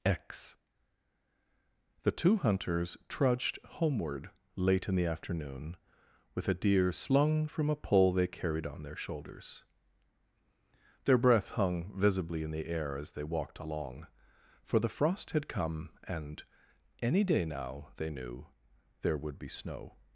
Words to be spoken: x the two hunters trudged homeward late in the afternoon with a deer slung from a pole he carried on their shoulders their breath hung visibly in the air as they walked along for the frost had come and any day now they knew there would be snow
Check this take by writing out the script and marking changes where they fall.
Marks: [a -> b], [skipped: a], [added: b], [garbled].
x the two hunters trudged homeward late in the afternoon with a deer slung from a pole [he -> they] carried on their shoulders their breath hung visibly in the air as they walked along for the frost had come and any day now they knew there would be snow